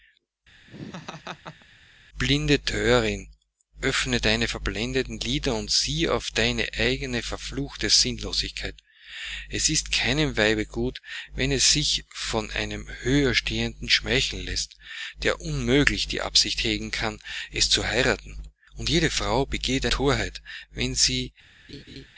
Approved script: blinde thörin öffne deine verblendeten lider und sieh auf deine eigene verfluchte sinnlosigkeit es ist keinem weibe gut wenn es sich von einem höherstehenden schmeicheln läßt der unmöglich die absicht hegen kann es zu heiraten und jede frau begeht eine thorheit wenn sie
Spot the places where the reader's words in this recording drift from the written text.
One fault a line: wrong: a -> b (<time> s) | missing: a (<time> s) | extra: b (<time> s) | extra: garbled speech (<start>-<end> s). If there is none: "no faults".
missing: eine (19.9 s)